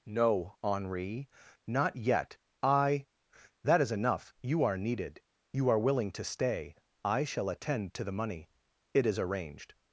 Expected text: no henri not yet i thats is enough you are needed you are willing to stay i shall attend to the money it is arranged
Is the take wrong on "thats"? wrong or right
wrong